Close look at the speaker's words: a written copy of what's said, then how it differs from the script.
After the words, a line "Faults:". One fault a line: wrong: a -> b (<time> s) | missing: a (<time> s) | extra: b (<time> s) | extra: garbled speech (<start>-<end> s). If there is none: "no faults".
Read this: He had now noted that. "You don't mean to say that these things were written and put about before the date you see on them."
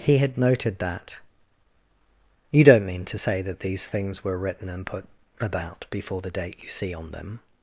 He had noted that. "You don't mean to say that these things were written and put about before the date you see on them."
Faults:
missing: now (0.3 s)